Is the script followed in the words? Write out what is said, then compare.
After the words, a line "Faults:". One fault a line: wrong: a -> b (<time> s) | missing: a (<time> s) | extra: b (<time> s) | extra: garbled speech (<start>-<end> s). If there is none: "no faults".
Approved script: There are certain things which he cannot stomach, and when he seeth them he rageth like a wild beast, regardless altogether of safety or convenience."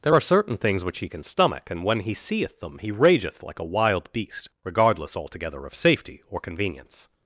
There are certain things which he can stomach, and when he seeth them he rageth like a wild beast, regardless altogether of safety or convenience."
Faults:
wrong: cannot -> can (1.1 s)